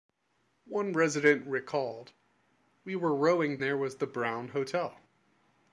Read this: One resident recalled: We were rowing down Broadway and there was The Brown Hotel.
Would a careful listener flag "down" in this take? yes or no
yes